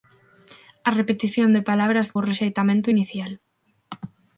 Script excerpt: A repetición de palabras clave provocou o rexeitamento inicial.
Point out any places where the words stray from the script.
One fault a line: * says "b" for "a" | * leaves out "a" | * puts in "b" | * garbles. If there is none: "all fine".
* leaves out "clave provocou"